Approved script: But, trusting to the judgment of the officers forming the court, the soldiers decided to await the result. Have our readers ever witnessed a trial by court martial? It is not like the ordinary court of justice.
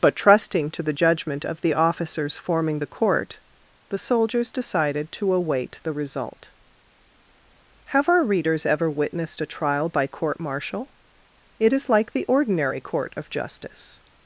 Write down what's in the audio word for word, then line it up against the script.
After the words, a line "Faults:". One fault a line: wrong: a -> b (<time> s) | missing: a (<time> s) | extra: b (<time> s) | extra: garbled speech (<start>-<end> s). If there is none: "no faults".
But, trusting to the judgment of the officers forming the court, the soldiers decided to await the result. Have our readers ever witnessed a trial by court martial? It is like the ordinary court of justice.
Faults:
missing: not (11.9 s)